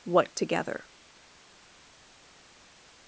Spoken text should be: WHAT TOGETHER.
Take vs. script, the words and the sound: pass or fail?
pass